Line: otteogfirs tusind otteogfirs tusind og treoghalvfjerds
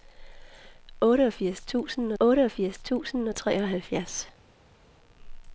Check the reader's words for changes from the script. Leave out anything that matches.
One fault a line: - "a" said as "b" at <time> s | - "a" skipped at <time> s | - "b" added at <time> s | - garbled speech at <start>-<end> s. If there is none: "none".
none